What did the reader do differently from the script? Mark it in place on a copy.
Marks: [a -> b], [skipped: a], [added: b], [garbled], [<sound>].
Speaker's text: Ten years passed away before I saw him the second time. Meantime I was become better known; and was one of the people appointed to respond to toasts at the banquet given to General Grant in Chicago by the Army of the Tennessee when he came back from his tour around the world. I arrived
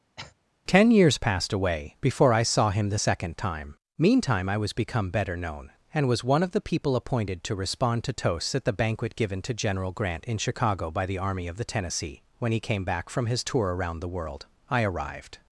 [cough] Ten years passed away before I saw him the second time. Meantime I was become better known; and was one of the people appointed to respond to toasts at the banquet given to General Grant in Chicago by the Army of the Tennessee when he came back from his tour around the world. I arrived